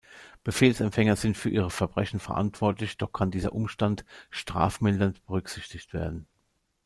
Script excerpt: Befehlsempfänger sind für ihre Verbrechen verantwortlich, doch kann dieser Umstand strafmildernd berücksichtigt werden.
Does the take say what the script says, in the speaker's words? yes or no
yes